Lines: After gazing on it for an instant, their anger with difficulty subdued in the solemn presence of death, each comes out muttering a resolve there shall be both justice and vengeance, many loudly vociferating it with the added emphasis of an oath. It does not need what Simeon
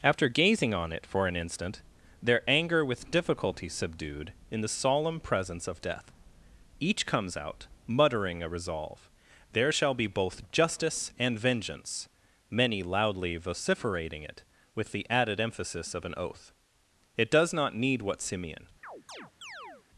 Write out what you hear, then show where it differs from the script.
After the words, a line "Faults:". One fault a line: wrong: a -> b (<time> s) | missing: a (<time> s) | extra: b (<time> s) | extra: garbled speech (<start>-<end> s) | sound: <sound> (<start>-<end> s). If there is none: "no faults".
After gazing on it for an instant, their anger with difficulty subdued in the solemn presence of death, each comes out muttering a resolve there shall be both justice and vengeance, many loudly vociferating it with the added emphasis of an oath. It does not need what Simeon
Faults:
sound: chirp (18.8-19.9 s)